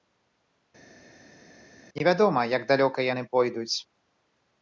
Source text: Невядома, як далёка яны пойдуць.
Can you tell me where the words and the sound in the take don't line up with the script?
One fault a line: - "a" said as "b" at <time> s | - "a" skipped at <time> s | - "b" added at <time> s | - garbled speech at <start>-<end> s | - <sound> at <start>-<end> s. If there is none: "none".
none